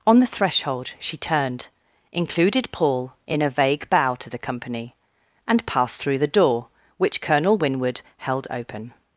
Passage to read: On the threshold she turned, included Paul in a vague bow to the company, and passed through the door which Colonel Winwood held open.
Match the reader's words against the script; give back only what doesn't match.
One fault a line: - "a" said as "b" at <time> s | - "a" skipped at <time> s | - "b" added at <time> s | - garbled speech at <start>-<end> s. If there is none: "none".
none